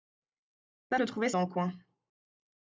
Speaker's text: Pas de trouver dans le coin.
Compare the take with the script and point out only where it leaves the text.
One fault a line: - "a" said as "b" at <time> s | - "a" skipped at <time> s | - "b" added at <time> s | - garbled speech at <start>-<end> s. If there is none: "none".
none